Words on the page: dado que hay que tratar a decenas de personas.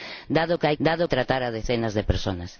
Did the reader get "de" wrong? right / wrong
right